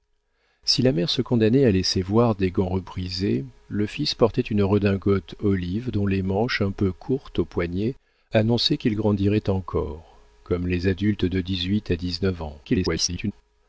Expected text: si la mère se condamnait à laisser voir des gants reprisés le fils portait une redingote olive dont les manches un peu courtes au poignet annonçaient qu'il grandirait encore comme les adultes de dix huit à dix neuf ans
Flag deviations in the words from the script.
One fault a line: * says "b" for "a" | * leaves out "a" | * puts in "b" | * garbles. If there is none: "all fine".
* garbles